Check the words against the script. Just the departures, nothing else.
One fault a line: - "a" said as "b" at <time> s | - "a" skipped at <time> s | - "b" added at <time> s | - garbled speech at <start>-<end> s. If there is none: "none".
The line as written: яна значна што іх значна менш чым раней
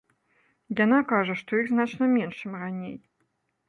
- "значна" said as "кажа" at 1.1 s